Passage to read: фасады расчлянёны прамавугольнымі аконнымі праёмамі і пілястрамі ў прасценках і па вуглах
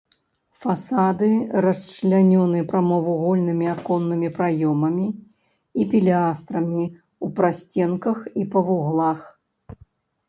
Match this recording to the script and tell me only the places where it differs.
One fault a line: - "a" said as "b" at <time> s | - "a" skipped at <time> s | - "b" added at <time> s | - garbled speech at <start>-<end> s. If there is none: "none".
none